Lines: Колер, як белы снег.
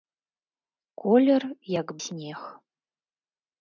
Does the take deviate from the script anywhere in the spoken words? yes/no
yes